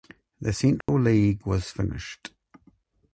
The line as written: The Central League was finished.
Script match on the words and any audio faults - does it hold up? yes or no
no